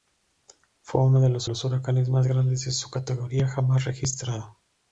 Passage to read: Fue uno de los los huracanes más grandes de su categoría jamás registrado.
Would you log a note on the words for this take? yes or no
no